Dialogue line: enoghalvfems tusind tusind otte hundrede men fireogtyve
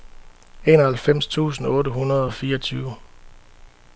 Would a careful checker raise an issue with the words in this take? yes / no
yes